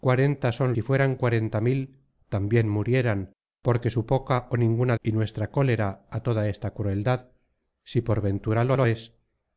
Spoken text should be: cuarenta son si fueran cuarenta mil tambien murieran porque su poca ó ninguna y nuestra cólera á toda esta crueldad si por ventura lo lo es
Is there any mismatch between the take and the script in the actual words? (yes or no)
no